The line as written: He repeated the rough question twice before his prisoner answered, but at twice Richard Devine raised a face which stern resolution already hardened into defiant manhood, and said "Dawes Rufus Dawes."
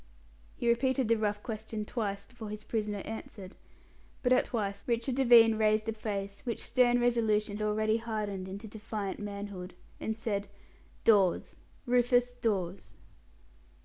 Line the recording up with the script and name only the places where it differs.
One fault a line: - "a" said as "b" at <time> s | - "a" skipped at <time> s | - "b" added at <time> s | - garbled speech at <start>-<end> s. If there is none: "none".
none